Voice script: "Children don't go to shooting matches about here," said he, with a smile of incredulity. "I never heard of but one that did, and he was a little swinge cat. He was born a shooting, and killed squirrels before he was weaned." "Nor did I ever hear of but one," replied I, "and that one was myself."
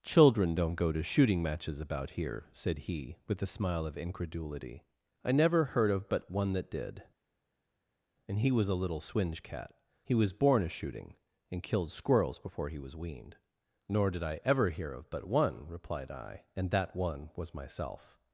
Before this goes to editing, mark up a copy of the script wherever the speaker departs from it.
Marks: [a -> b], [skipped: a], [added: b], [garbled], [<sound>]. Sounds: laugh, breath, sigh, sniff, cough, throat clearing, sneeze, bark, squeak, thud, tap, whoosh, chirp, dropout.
"Children don't go to shooting matches about here," said he, with a smile of incredulity. "I never heard of but one that did, and he was a little swinge cat. He was born a shooting, and killed squirrels before he was weaned." "Nor did I ever hear of but one," replied I, "and that one was myself."